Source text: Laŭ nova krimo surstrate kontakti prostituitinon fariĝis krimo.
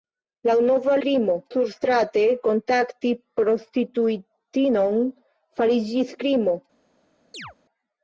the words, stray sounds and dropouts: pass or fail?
fail